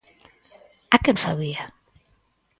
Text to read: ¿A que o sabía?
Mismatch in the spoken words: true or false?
false